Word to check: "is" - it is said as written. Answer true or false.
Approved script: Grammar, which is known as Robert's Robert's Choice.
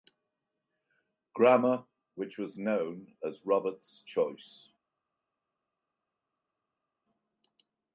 false